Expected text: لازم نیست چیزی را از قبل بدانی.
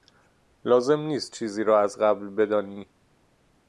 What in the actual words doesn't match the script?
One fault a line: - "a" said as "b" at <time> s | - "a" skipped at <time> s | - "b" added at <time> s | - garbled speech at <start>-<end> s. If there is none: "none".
none